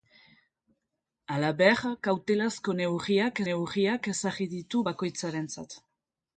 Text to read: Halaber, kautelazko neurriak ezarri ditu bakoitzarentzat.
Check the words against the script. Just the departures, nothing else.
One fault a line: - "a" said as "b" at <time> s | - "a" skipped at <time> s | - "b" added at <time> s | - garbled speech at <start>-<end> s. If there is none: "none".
- "neurriak" added at 3.5 s